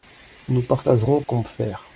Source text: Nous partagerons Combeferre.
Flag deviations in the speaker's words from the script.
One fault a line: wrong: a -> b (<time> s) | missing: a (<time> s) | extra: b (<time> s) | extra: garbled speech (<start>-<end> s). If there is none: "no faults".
no faults